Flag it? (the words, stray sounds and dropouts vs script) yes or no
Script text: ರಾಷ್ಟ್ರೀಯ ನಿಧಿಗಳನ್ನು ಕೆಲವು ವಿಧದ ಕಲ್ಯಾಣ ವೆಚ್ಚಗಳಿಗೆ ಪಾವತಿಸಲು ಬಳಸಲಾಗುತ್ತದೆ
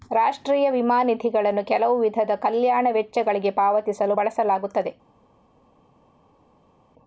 yes